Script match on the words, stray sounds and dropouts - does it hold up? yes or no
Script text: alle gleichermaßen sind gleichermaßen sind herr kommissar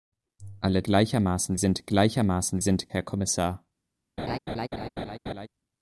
no